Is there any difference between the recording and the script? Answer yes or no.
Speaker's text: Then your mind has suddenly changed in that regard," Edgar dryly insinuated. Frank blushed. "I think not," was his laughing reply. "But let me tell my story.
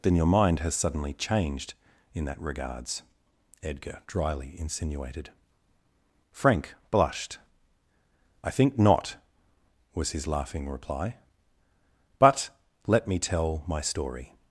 yes